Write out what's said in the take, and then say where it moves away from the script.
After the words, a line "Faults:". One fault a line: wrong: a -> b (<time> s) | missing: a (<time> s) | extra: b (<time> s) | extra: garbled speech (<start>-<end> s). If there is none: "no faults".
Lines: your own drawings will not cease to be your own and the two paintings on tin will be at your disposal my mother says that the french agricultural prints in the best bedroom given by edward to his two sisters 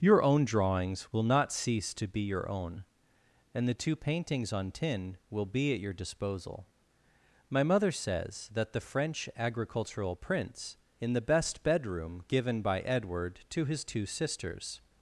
your own drawings will not cease to be your own and the two paintings on tin will be at your disposal my mother says that the french agricultural prints in the best bedroom given by edward to his two sisters
Faults:
no faults